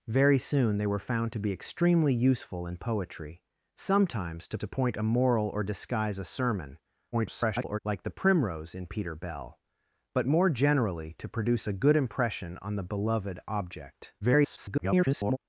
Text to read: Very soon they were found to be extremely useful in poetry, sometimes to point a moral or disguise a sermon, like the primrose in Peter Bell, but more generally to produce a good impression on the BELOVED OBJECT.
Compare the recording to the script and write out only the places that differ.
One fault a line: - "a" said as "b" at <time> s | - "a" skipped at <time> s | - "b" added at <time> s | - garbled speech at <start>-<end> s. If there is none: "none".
- "to" added at 4.6 s
- garbled speech at 7.1-7.8 s
- garbled speech at 14.2-15.4 s